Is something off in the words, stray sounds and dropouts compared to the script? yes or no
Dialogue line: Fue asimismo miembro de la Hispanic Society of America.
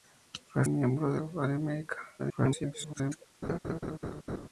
yes